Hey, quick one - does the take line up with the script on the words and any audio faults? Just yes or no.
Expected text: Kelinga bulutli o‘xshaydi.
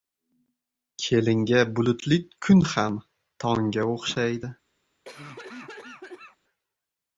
no